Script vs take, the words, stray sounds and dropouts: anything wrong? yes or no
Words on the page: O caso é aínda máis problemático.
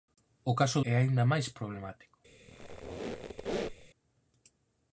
yes